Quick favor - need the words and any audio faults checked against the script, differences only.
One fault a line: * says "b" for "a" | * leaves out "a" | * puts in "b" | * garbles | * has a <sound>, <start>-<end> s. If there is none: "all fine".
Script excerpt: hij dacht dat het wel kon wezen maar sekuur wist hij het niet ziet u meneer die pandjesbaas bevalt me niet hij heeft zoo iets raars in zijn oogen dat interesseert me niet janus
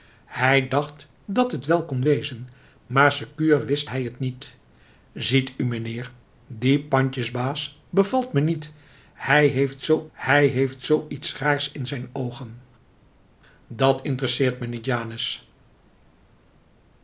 * puts in "hij heeft zoo"